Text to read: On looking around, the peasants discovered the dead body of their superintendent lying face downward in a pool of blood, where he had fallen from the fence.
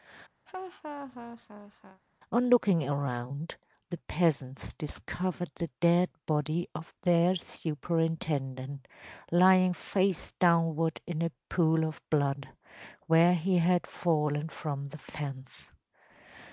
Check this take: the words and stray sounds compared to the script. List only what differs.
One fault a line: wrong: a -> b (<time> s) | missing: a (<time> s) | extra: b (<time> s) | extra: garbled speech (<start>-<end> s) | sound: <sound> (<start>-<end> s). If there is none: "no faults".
sound: laugh (0.5-2.0 s)